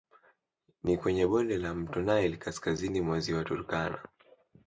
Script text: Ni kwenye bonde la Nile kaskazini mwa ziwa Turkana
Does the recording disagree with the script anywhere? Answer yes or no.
yes